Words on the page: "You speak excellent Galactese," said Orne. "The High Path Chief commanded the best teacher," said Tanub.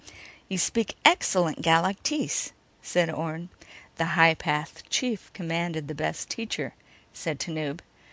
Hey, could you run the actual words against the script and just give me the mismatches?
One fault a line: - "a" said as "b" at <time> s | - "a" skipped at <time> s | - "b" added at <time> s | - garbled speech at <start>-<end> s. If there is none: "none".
none